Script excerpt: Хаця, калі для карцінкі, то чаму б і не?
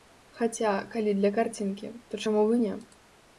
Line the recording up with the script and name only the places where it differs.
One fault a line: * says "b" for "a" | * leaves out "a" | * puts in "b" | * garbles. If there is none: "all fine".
all fine